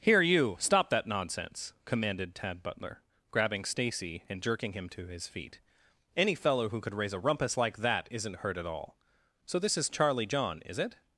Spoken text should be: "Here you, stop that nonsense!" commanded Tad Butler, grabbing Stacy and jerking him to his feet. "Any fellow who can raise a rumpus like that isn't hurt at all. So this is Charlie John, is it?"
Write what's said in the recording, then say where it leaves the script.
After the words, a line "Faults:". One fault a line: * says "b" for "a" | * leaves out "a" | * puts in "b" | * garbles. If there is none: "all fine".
"Here you, stop that nonsense!" commanded Tad Butler, grabbing Stacy and jerking him to his feet. "Any fellow who could raise a rumpus like that isn't hurt at all. So this is Charlie John, is it?"
Faults:
* says "could" for "can"